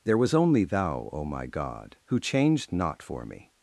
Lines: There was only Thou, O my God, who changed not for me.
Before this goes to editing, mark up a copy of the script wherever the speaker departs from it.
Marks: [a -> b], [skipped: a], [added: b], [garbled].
There was only Thou, O my God, who changed not for me.